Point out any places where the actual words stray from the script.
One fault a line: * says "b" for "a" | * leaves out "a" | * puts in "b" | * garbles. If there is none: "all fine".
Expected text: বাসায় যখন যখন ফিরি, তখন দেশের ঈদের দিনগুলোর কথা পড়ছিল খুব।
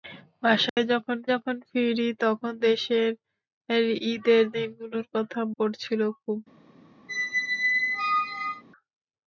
all fine